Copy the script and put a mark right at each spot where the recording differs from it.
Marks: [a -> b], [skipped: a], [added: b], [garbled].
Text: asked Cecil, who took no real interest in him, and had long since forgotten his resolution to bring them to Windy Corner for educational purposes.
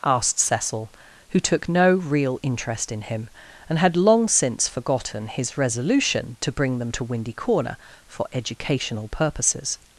asked Cecil, who took no real interest in him, and had long since forgotten his resolution to bring them to Windy Corner for educational purposes.